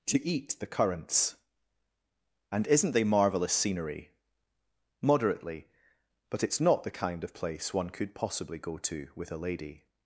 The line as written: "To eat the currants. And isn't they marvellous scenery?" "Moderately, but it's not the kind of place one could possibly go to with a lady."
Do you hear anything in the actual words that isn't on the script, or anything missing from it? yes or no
no